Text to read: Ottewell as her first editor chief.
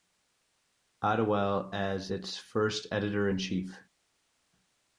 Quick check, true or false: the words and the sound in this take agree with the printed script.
false